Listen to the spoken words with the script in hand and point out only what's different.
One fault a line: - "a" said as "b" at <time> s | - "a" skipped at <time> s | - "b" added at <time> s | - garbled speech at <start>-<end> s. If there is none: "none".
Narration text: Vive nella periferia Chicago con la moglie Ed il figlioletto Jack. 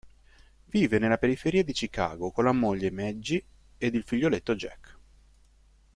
- "di" added at 1.6 s
- "Maggie" added at 2.9 s